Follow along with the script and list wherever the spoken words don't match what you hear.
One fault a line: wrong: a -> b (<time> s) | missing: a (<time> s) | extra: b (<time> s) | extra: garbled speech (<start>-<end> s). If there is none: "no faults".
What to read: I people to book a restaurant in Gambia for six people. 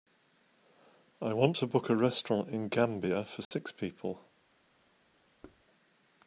wrong: people -> want (1.3 s)